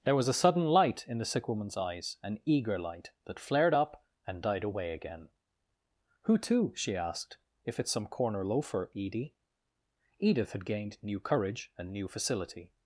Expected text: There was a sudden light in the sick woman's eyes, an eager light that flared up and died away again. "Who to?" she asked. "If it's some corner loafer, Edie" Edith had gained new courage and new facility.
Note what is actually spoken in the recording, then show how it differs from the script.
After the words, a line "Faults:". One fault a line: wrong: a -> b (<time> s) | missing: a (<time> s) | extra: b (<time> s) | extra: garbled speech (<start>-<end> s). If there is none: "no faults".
There was a sudden light in the sick woman's eyes, an eager light that flared up and died away again. "Who to?" she asked. "If it's some corner loafer, Edie" Edith had gained new courage and new facility.
Faults:
no faults